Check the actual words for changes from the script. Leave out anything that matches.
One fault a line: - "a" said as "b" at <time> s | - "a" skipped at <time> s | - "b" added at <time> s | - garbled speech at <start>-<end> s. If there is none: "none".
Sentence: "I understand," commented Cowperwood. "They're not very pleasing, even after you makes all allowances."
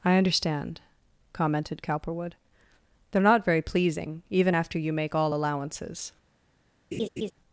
- "makes" said as "make" at 4.9 s